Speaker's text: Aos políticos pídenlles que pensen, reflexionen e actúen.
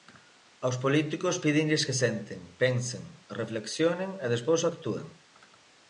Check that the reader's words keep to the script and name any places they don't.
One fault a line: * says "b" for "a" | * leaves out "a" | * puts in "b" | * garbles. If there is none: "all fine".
* puts in "senten"
* puts in "despois"